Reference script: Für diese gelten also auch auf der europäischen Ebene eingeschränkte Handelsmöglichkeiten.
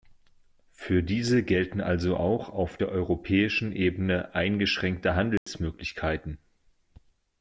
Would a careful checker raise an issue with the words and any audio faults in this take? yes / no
yes